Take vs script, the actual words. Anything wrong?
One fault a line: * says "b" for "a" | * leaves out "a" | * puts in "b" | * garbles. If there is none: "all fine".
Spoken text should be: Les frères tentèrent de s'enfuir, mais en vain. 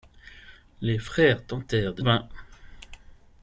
* leaves out "s'enfuir mais en"